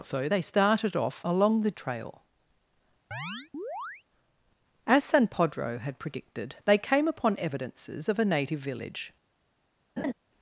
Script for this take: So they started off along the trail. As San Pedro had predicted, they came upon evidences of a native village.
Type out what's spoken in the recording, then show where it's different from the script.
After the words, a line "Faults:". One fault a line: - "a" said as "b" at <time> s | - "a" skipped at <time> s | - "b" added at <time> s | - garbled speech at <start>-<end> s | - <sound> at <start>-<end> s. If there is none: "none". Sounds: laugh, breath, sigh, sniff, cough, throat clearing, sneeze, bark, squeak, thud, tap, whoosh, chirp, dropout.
So they started off along the trail. As San Pedro had predicted, they came upon evidences of a native village.
Faults:
- chirp at 3.1-4.0 s
- laugh at 10.0-10.1 s